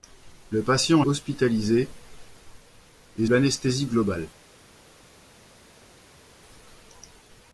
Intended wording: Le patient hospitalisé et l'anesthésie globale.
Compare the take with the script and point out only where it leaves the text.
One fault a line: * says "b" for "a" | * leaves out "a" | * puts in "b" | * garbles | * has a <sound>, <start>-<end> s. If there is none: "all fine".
all fine